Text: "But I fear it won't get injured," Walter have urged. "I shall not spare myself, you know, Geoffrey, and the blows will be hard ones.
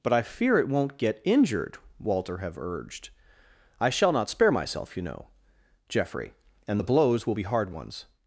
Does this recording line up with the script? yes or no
yes